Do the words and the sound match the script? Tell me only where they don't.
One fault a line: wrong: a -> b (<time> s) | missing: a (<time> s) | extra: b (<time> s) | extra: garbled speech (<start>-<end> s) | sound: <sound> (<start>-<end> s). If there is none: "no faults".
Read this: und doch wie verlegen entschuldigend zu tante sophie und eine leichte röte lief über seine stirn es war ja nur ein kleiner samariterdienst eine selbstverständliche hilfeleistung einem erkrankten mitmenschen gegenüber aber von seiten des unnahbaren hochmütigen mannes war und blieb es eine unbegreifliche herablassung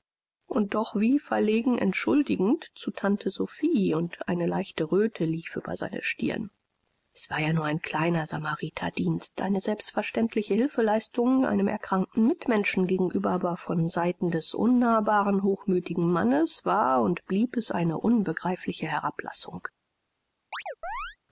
sound: chirp (20.5-21.2 s)